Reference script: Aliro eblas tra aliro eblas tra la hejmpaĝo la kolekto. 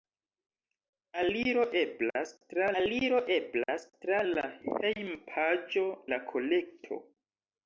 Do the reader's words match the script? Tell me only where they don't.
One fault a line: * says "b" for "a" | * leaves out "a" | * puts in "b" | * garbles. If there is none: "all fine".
all fine